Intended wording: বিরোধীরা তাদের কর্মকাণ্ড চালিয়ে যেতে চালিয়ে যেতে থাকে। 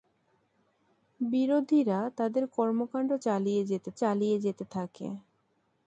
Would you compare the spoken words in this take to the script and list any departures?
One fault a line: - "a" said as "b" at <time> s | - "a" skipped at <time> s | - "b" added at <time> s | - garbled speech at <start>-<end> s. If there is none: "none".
none